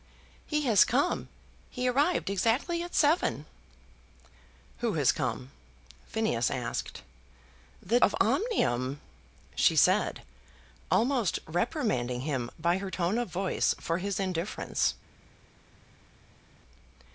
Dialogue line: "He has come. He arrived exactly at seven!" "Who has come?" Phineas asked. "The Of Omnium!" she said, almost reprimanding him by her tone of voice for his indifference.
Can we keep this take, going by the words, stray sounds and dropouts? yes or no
yes